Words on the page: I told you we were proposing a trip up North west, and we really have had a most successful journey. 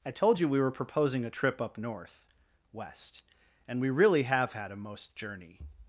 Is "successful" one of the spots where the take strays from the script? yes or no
yes